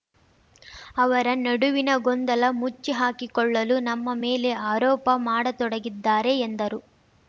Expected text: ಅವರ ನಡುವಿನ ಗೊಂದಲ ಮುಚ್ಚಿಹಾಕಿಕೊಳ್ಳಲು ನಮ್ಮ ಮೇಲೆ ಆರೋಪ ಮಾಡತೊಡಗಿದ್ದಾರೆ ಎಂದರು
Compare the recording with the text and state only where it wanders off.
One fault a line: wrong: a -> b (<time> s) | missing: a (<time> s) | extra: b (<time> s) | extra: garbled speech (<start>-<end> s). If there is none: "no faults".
no faults